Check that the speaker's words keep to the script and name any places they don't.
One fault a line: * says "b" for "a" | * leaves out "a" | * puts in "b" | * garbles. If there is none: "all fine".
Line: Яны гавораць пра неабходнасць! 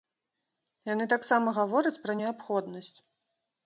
* puts in "таксама"